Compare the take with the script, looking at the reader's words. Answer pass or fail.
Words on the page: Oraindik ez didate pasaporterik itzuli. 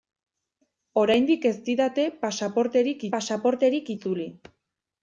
fail